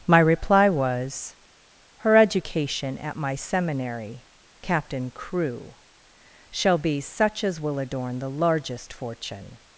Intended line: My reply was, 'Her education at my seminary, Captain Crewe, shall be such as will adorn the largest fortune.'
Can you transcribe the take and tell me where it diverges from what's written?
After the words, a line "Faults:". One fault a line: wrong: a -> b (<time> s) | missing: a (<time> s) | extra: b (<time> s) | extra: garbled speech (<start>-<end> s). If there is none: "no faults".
My reply was, 'Her education at my seminary, Captain Crewe, shall be such as will adorn the largest fortune.'
Faults:
no faults